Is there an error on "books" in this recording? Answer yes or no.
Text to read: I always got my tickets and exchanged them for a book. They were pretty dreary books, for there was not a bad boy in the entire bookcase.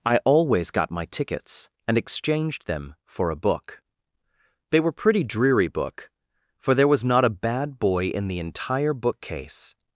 yes